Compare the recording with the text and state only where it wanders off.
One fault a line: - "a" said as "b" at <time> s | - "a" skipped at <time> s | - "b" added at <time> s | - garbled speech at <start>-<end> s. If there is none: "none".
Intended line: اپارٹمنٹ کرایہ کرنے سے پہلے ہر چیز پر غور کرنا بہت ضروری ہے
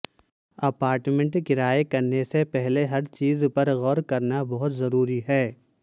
none